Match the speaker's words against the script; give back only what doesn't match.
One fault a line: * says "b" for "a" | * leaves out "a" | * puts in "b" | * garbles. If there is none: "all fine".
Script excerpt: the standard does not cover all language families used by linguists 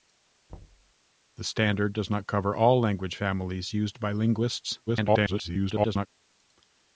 * garbles